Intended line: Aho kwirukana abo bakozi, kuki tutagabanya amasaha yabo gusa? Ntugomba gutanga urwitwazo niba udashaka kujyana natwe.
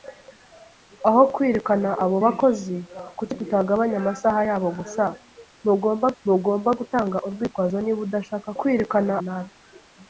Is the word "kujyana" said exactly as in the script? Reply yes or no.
no